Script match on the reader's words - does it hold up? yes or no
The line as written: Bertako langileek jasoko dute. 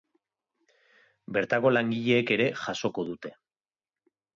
no